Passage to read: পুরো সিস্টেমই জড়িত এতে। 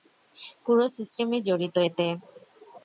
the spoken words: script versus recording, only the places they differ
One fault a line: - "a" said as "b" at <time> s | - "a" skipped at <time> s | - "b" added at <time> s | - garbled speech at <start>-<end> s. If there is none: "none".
none